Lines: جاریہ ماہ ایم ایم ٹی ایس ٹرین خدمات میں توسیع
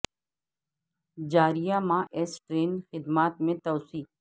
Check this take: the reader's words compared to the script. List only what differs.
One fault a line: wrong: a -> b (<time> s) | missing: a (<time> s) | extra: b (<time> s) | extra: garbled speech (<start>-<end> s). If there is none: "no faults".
missing: ایم ایم ٹی (2.0 s)